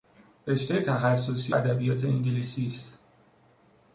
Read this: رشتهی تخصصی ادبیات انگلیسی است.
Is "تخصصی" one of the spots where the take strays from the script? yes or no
no